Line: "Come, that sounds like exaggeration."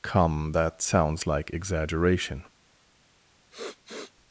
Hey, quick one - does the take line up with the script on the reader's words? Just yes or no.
yes